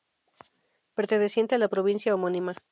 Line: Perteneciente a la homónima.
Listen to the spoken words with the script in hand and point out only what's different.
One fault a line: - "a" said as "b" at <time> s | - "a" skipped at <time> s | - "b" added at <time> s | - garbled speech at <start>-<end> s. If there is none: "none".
- "provincia" added at 1.7 s